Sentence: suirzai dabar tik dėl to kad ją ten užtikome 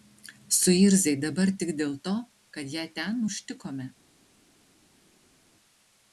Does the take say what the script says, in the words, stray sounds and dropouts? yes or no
yes